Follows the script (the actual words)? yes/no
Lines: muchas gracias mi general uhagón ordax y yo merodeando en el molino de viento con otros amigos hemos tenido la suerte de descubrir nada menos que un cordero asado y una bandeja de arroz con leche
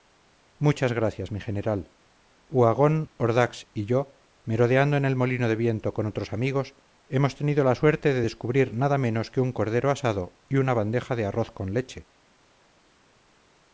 yes